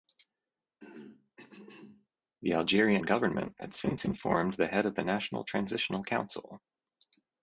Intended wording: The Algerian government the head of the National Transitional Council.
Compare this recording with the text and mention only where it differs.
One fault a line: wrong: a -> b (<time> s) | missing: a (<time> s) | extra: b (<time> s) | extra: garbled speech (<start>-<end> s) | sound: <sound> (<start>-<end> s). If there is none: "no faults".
sound: throat clearing (0.8-2.1 s)
extra: had since informed (3.6 s)